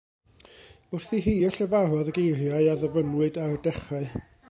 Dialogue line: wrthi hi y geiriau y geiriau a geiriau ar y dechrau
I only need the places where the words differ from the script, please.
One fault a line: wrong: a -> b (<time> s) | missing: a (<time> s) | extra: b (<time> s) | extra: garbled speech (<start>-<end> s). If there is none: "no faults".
wrong: geiriau -> llefarodd (1.6 s)
wrong: geiriau -> ddyfynnwyd (2.8 s)